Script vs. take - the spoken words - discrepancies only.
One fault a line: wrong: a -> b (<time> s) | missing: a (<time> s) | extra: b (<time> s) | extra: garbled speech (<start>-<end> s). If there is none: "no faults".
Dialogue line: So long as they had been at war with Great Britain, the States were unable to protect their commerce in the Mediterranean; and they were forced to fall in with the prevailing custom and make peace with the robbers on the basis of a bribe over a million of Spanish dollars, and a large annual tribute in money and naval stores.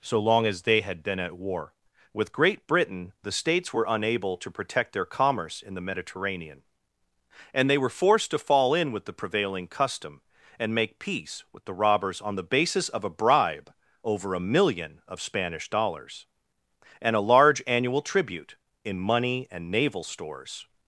no faults